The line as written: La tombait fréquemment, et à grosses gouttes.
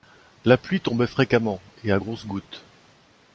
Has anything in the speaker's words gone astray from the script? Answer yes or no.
yes